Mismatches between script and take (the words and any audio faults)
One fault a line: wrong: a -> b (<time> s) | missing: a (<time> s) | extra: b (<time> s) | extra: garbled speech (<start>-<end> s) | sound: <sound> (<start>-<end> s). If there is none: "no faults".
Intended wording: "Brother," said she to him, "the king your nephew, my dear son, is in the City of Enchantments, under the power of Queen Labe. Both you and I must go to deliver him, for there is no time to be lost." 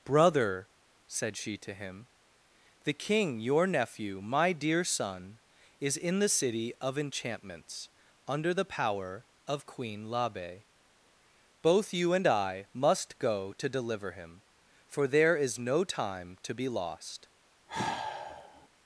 sound: sigh (17.7-18.7 s)